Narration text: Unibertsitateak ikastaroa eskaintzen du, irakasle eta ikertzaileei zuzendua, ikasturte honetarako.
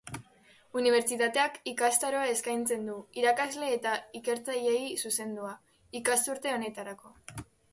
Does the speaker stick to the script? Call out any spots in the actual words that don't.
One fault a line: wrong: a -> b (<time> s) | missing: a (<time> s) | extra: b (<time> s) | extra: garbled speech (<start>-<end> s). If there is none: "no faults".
no faults